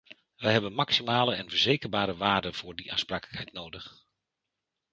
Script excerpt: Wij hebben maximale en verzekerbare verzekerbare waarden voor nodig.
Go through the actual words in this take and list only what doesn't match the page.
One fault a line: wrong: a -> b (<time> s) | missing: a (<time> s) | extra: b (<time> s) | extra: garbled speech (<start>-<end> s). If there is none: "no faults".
missing: verzekerbare (2.2 s)
extra: die aansprakelijkheid (2.8 s)